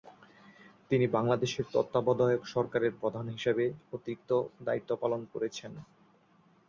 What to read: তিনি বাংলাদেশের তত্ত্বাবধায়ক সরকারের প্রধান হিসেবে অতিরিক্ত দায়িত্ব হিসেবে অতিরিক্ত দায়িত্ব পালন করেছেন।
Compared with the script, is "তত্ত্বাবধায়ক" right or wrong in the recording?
right